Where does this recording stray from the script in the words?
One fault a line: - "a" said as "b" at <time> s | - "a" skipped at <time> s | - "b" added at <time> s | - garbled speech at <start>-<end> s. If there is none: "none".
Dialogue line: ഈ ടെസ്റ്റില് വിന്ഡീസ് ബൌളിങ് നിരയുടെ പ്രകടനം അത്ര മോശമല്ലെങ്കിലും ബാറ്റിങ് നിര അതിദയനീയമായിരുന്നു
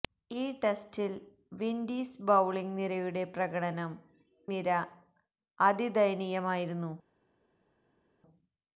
- "അത്ര മോശമല്ലെങ്കിലും ബാറ്റിങ്" skipped at 3.9 s